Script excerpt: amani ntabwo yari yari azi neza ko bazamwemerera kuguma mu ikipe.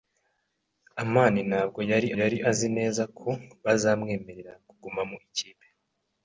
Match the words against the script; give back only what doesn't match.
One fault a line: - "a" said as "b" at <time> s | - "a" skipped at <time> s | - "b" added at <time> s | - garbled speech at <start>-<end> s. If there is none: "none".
none